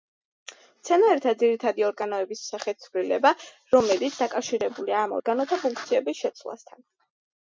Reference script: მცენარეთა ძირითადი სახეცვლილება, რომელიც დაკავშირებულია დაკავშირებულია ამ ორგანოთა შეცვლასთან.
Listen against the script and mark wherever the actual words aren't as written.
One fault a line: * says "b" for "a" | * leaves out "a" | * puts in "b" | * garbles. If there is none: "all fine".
* puts in "ორგანოების"
* leaves out "დაკავშირებულია"
* puts in "ფუნქციების"